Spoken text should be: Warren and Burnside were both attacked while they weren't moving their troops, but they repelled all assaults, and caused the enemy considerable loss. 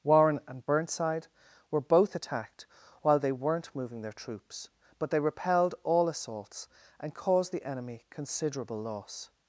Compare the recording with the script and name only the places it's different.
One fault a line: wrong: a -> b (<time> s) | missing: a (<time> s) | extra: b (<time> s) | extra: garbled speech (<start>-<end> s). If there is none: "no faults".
no faults